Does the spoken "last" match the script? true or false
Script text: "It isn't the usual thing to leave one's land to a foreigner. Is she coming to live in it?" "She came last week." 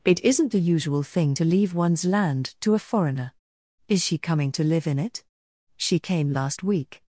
true